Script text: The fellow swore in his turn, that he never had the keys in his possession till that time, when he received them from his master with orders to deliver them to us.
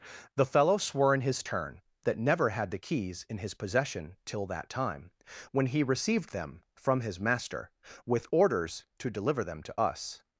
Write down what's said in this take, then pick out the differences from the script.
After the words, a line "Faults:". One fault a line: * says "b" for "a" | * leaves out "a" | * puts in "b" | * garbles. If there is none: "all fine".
The fellow swore in his turn, that never had the keys in his possession till that time, when he received them from his master with orders to deliver them to us.
Faults:
* leaves out "he"